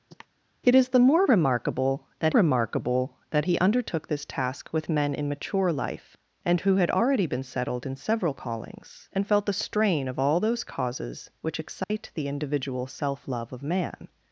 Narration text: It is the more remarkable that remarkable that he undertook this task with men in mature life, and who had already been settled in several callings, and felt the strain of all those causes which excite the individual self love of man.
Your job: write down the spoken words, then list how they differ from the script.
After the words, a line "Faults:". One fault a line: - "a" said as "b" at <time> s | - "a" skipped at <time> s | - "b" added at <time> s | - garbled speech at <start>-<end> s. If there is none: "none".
It is the more remarkable that remarkable that he undertook this task with men in mature life, and who had already been settled in several callings, and felt the strain of all those causes which excite the individual self love of man.
Faults:
none